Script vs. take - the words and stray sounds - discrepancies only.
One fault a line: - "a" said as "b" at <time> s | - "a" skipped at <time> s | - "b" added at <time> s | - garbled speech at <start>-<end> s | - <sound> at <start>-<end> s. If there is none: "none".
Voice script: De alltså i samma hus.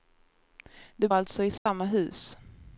- dropout at 1.6-1.7 s